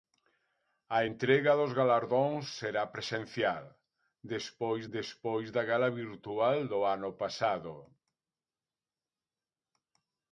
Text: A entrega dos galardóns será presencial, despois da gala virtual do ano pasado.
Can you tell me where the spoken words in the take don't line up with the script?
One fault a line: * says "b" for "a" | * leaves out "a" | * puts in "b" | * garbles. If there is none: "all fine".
* puts in "despois"